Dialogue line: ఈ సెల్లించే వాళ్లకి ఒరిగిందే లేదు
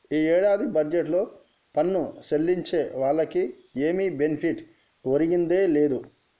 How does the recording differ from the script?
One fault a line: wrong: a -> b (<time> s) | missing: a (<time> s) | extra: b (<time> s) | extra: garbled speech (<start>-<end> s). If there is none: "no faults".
extra: ఏడాది బడ్జెట్లో పన్ను (0.3 s)
extra: ఏమి బెనిఫిట్ (3.8 s)